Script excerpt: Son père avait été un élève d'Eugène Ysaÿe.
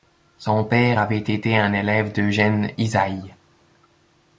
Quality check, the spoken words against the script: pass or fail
pass